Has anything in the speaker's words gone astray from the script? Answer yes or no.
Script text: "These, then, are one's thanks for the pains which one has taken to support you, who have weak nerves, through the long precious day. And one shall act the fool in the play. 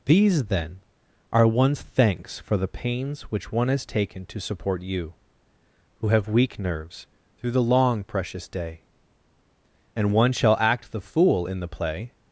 no